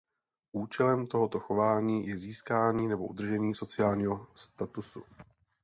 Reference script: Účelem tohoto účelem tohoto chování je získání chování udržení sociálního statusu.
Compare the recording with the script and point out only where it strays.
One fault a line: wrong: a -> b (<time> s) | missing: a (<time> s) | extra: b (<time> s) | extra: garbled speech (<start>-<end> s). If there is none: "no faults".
missing: účelem tohoto (1.4 s)
wrong: chování -> nebo (2.9 s)